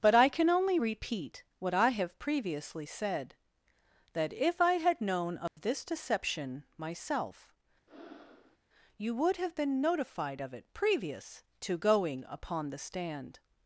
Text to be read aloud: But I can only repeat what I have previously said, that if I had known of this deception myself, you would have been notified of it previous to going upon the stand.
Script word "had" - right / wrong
right